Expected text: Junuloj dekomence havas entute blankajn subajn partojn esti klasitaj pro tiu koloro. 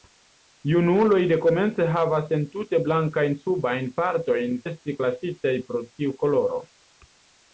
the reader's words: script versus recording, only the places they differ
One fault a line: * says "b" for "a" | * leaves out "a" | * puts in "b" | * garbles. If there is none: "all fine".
all fine